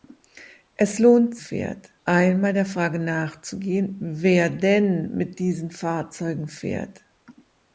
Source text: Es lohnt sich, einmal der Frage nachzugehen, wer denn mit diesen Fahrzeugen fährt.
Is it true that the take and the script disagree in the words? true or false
true